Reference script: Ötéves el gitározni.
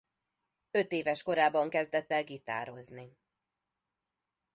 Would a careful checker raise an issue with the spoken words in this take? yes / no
yes